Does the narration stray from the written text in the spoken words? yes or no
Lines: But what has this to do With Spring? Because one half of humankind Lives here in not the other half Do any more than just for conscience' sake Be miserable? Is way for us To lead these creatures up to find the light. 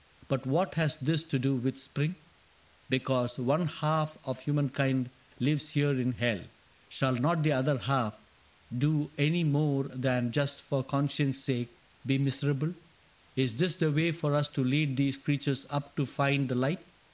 yes